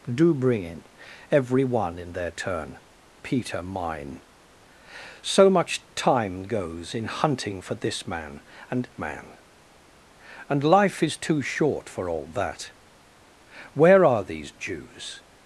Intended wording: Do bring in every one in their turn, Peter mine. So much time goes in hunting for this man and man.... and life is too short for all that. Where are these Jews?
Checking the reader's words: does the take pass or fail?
pass